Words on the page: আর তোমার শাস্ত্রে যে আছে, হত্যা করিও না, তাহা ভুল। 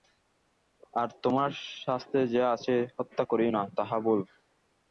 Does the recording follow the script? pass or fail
pass